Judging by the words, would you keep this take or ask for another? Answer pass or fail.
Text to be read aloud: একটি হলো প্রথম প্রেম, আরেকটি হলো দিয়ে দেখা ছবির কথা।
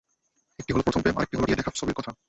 pass